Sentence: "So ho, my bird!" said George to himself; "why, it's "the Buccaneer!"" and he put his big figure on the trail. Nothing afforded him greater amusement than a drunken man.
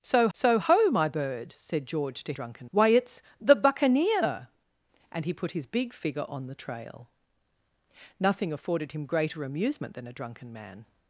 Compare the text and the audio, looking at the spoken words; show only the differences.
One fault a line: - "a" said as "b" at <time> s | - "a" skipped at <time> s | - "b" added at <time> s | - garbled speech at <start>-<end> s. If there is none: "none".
- "so" added at 0.3 s
- "himself" said as "drunken" at 2.3 s